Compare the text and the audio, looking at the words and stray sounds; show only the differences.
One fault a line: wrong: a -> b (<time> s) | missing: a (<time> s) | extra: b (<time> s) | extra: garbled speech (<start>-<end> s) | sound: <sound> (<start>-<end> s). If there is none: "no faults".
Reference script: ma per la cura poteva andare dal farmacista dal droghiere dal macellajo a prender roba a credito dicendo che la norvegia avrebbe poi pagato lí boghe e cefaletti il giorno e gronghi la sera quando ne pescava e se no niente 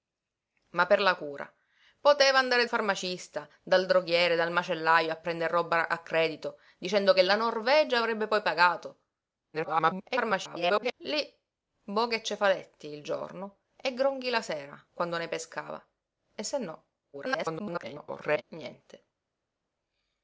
missing: dal (2.6 s)
extra: garbled speech (9.5-10.9 s)
extra: garbled speech (17.1-18.4 s)